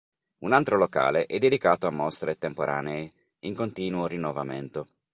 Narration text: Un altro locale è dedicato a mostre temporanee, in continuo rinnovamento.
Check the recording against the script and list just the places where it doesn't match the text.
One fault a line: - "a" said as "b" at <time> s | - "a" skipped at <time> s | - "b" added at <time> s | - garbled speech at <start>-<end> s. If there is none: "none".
none